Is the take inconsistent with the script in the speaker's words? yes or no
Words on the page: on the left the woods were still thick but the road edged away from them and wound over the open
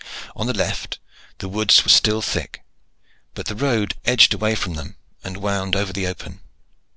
no